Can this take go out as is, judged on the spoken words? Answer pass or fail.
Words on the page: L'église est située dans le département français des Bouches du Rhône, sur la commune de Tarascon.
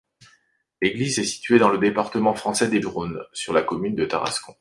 fail